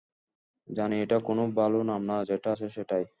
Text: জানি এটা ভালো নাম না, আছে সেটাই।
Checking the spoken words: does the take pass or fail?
fail